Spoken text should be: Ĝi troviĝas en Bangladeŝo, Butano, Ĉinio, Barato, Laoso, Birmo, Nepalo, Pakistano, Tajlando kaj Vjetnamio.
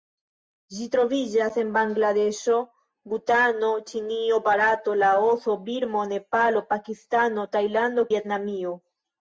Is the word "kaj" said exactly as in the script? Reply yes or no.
no